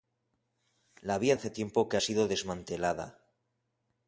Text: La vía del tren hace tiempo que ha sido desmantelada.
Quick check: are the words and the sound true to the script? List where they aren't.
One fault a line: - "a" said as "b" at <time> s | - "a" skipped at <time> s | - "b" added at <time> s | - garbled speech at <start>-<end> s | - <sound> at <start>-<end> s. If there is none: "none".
- "del tren" skipped at 1.4 s